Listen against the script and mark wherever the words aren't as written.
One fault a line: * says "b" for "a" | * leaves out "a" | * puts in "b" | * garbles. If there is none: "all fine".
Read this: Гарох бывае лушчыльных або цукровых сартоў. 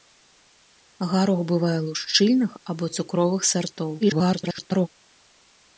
* garbles